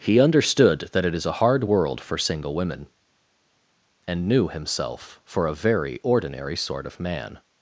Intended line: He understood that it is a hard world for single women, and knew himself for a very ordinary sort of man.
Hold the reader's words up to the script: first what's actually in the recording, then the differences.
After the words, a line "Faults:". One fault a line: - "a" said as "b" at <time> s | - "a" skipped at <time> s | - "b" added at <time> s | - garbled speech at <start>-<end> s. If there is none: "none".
He understood that it is a hard world for single women, and knew himself for a very ordinary sort of man.
Faults:
none